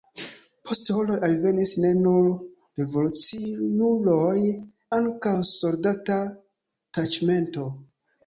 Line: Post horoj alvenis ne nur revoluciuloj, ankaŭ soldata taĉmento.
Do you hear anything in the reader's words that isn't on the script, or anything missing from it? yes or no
no